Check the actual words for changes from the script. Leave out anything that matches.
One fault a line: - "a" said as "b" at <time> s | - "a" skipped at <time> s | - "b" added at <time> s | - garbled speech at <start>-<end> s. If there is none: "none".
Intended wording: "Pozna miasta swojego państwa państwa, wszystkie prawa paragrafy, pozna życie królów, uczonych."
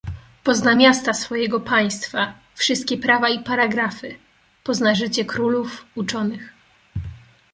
- "państwa" skipped at 2.3 s
- "i" added at 3.3 s